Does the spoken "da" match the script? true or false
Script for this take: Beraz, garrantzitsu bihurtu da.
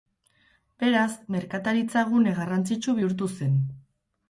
false